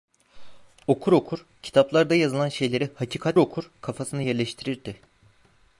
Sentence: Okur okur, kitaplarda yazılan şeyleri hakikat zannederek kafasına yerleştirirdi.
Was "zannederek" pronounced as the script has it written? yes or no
no